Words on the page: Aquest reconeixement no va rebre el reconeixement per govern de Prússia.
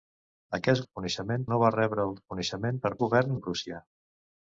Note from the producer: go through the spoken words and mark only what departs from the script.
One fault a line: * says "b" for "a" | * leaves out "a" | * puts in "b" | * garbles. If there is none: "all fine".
all fine